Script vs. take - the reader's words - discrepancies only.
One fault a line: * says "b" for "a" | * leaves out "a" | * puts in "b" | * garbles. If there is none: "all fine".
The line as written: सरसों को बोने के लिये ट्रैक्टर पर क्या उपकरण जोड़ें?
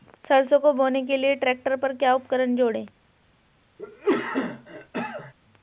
all fine